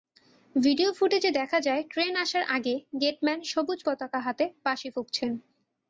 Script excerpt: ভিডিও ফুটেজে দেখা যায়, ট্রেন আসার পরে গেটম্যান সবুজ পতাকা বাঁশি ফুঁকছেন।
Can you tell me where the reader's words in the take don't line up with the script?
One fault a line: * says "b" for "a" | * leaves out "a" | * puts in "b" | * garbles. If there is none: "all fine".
* says "আগে" for "পরে"
* puts in "হাতে"